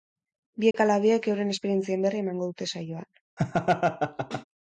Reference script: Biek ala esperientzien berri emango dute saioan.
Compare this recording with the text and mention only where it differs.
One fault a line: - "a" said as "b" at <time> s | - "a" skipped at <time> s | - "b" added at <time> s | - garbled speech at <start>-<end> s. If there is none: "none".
- "biek euren" added at 1.0 s